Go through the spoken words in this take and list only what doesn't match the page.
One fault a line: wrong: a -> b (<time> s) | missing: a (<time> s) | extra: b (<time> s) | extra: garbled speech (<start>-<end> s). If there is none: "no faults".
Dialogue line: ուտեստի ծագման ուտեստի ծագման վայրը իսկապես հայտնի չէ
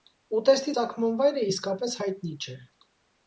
missing: ուտեստի ծագման (1.2 s)